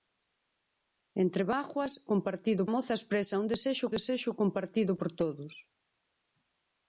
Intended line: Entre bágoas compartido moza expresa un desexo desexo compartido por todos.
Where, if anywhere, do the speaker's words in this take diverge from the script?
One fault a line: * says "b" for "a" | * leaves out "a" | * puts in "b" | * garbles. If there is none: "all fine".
all fine